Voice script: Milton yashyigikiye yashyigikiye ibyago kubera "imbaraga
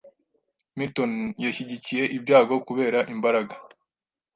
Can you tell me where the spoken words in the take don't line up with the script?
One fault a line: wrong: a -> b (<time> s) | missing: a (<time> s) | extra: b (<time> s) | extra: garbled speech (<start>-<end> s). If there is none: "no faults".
missing: yashyigikiye (2.0 s)